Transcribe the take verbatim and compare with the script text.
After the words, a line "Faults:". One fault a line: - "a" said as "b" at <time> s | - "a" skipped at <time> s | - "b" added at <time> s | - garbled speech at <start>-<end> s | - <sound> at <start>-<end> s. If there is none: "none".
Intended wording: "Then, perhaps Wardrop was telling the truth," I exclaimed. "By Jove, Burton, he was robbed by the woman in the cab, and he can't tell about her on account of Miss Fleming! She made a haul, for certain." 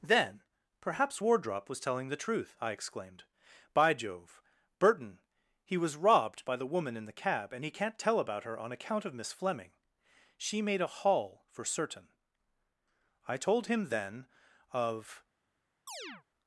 "Then, perhaps Wardrop was telling the truth," I exclaimed. "By Jove, Burton, he was robbed by the woman in the cab, and he can't tell about her on account of Miss Fleming! She made a haul, for certain." I told him then of
Faults:
- "I told him then of" added at 13.3 s
- chirp at 15.9-16.2 s